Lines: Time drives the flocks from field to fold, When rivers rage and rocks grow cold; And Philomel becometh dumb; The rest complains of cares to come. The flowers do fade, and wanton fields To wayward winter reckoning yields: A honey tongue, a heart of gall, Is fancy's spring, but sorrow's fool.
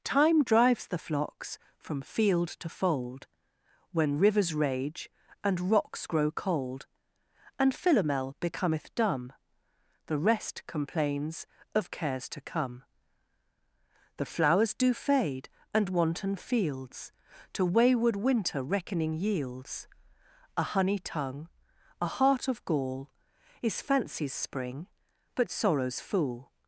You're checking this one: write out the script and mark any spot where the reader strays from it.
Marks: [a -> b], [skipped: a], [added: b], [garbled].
Time drives the flocks from field to fold, When rivers rage and rocks grow cold; And Philomel becometh dumb; The rest complains of cares to come. The flowers do fade, and wanton fields To wayward winter reckoning yields: A honey tongue, a heart of gall, Is fancy's spring, but sorrow's fool.